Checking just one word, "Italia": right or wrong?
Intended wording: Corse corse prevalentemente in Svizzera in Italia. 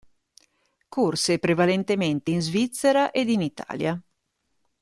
right